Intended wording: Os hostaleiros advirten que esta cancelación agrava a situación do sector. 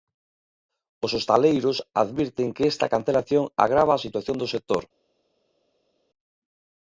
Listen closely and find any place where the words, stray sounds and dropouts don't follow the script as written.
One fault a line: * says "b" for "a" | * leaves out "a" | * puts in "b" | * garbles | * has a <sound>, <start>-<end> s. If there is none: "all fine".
all fine